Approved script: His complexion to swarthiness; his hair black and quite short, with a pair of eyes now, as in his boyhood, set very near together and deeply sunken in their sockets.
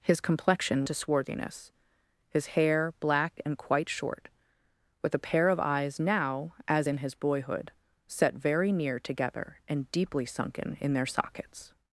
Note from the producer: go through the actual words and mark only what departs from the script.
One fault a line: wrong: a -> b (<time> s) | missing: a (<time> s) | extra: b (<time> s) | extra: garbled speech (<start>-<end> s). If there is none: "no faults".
no faults